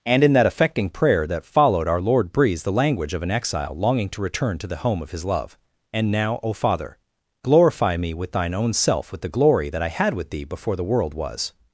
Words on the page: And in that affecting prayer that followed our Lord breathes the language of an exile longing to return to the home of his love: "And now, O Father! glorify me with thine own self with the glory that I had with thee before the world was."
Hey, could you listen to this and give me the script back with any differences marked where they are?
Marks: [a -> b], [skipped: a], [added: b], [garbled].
And in that affecting prayer that followed our Lord breathes the language of an exile longing to return to the home of his love: "And now, O Father! glorify me with thine own self with the glory that I had with thee before the world was."